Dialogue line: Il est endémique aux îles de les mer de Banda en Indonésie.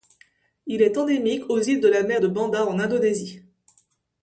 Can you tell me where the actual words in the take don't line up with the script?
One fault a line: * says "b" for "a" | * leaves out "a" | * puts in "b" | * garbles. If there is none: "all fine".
* says "la" for "les"